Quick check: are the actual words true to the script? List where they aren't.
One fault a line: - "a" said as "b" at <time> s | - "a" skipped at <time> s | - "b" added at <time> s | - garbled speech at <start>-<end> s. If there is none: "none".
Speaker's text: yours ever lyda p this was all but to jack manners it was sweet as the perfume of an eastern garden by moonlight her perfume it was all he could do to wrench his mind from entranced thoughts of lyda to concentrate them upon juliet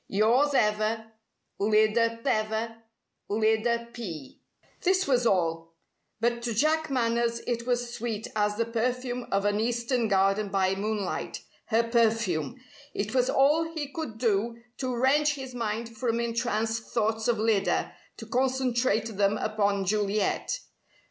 - "ever lyda" added at 2.3 s